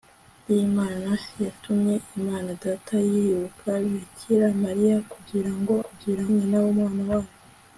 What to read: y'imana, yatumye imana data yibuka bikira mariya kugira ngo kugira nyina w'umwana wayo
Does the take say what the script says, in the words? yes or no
yes